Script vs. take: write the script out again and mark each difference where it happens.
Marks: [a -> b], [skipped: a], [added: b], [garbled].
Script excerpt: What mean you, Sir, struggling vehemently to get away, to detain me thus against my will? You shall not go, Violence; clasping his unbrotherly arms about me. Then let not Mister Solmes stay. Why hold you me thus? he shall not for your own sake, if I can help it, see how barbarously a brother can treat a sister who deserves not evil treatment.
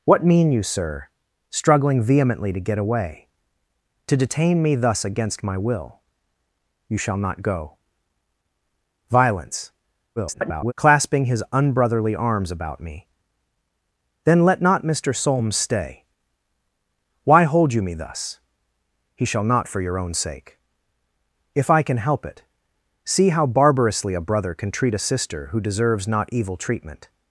What mean you, Sir, struggling vehemently to get away, to detain me thus against my will? You shall not go, Violence; [garbled] clasping his unbrotherly arms about me. Then let not Mister Solmes stay. Why hold you me thus? he shall not for your own sake, if I can help it, see how barbarously a brother can treat a sister who deserves not evil treatment.